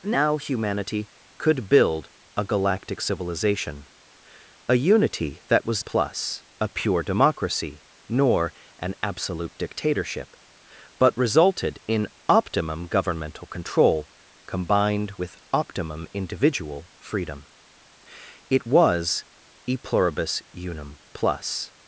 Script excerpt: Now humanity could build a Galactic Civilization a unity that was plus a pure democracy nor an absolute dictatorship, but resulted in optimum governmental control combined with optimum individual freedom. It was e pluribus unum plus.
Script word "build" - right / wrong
right